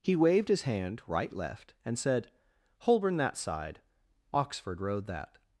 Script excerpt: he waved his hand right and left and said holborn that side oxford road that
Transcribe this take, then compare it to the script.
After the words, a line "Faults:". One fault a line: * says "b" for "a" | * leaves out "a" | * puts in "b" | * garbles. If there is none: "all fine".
he waved his hand right left and said holborn that side oxford road that
Faults:
* leaves out "and"